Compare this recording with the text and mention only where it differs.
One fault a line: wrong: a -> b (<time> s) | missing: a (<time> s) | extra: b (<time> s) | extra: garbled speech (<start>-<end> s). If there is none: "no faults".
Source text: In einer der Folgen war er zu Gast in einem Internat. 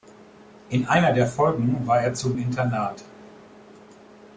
missing: Gast in einem (2.3 s)